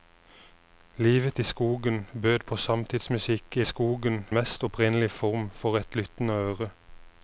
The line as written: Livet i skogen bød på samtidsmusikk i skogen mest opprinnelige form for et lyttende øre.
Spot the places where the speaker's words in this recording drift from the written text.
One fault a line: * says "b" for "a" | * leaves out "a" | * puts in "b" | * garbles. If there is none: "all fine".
all fine